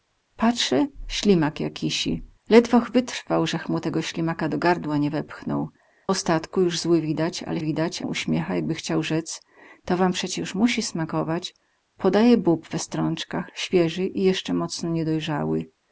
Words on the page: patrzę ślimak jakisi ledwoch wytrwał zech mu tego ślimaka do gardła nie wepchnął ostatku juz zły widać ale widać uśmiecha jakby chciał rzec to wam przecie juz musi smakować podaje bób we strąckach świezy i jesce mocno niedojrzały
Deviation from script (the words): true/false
false